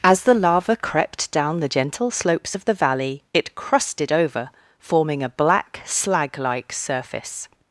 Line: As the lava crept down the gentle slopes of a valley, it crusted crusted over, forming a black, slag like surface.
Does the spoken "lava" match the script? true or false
true